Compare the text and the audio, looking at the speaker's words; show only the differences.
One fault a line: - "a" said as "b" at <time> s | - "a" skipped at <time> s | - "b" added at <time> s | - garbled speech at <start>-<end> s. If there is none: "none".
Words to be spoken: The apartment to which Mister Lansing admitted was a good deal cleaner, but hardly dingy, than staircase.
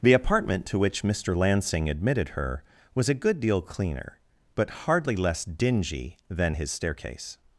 - "her" added at 2.3 s
- "less" added at 5.2 s
- "his" added at 6.5 s